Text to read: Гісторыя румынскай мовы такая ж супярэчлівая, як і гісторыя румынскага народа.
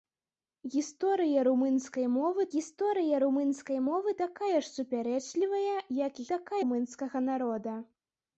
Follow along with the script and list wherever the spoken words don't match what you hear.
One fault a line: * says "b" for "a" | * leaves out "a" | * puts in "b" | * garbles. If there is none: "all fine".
* puts in "гісторыя румынскай мовы"
* says "такая" for "гісторыя"